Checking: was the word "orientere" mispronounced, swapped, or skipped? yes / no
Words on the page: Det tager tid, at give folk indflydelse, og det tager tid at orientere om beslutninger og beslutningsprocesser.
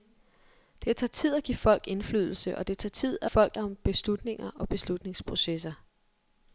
yes